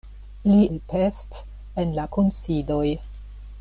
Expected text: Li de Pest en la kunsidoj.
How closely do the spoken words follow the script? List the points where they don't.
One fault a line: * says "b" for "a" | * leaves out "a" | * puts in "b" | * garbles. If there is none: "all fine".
all fine